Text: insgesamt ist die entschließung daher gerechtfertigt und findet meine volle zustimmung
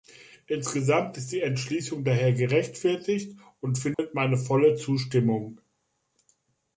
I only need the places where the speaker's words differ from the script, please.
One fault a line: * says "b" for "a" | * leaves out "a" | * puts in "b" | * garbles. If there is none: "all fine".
all fine